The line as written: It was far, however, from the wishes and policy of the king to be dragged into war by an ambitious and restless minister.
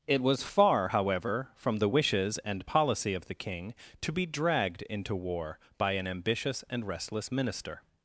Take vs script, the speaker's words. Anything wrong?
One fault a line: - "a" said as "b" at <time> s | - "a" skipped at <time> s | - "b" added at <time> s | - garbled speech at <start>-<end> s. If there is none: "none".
none